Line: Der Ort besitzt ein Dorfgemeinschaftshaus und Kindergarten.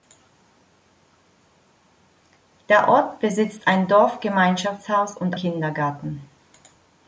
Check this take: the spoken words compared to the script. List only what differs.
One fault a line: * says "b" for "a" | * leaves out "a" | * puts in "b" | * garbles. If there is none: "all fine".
all fine